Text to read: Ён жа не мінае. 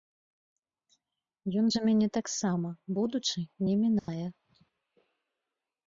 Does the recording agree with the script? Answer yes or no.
no